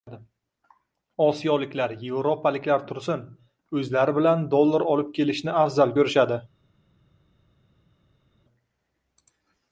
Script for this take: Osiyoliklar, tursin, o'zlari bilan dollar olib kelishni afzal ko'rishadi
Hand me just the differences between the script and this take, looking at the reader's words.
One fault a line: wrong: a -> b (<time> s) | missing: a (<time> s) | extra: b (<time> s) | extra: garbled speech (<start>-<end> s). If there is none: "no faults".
extra: yevropaliklar (2.0 s)